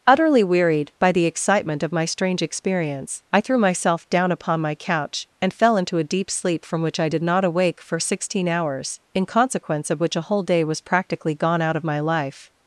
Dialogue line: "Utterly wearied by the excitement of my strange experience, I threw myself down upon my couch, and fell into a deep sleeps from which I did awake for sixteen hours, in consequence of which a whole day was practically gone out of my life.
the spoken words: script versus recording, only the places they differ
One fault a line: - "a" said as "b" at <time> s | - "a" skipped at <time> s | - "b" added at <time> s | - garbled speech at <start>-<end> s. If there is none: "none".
- "sleeps" said as "sleep" at 6.3 s
- "not" added at 7.2 s